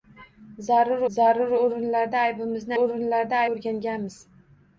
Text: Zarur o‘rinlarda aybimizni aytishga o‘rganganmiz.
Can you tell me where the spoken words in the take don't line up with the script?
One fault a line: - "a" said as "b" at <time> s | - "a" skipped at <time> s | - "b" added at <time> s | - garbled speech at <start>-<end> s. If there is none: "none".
- "zarur" added at 1.2 s
- "aytishga" said as "o‘rinlarda" at 2.8 s